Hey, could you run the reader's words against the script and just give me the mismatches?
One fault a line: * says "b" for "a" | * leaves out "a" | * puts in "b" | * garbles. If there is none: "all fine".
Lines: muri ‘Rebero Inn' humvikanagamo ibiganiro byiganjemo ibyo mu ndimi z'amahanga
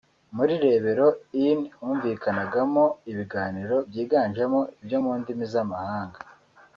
all fine